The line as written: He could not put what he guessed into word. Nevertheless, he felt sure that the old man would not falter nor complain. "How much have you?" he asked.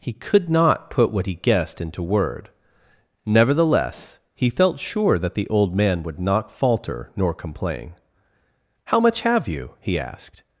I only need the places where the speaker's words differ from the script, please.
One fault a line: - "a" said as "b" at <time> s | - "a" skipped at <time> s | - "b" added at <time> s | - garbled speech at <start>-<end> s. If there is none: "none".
none